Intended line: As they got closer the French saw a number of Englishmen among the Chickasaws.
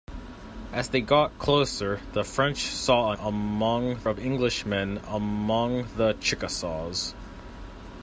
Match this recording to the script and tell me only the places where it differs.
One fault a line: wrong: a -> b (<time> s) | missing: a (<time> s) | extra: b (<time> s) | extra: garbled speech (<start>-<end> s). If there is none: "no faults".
wrong: number -> among (3.2 s)